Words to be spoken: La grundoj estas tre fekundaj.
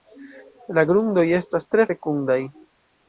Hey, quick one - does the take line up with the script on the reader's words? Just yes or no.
yes